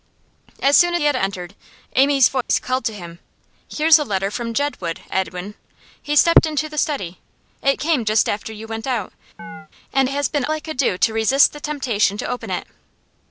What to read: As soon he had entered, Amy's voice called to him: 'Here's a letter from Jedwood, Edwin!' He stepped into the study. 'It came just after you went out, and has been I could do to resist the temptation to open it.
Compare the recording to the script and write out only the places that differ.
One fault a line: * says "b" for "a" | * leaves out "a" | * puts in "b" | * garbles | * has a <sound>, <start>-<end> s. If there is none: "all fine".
* has a dropout, 2.4-2.5 s
* has a chirp, 9.4-9.7 s